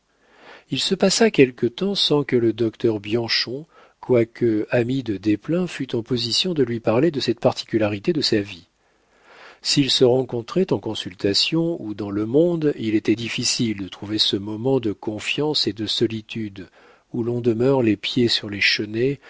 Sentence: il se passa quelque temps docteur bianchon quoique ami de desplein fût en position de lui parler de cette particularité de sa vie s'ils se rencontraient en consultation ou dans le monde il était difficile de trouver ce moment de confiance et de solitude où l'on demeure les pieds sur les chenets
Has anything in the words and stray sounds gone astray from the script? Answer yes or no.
yes